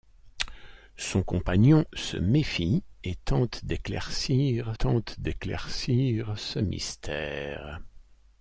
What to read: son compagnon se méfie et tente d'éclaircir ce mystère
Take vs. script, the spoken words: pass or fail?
fail